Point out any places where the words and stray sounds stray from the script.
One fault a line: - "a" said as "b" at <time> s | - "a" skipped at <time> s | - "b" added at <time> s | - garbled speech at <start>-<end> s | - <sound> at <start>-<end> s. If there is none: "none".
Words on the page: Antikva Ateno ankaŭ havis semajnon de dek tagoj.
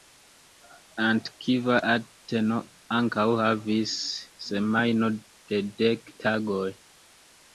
none